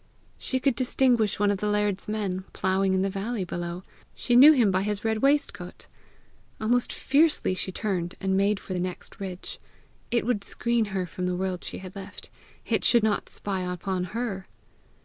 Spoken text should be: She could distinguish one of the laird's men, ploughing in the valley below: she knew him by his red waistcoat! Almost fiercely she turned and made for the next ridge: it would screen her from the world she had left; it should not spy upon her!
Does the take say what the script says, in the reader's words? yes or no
yes